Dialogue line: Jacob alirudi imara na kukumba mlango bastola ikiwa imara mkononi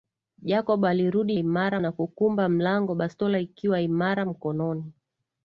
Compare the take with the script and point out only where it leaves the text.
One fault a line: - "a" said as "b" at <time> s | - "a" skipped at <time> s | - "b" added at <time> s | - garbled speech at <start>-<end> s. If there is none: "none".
none